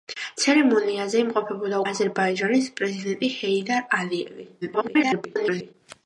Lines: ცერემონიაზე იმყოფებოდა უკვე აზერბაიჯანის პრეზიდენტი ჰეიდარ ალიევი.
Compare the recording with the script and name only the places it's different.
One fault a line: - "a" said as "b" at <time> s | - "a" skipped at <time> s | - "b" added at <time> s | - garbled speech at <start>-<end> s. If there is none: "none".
- "უკვე" skipped at 1.8 s
- garbled speech at 4.6-5.7 s